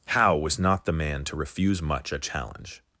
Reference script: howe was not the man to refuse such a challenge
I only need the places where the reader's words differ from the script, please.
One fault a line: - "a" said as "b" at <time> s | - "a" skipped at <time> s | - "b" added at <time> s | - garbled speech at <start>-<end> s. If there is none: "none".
- "such" said as "much" at 1.8 s